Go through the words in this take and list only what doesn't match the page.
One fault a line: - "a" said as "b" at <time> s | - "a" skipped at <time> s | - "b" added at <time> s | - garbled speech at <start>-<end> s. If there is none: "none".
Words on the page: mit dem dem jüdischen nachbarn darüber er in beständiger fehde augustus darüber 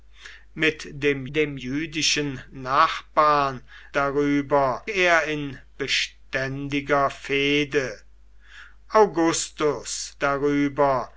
none